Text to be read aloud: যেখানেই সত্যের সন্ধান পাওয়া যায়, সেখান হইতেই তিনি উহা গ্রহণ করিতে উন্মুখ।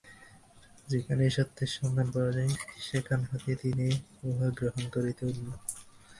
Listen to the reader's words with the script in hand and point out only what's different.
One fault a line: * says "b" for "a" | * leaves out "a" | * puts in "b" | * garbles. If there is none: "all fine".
all fine